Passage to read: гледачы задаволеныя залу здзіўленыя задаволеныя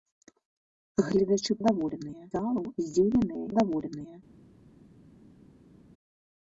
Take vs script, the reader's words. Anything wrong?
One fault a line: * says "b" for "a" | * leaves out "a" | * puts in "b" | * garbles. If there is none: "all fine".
all fine